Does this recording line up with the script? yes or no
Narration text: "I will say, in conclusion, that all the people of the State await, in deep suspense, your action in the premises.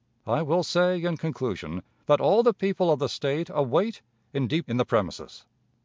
no